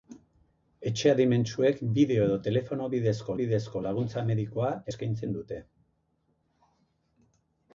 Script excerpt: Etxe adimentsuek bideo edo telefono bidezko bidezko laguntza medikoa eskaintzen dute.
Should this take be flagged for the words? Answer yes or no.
no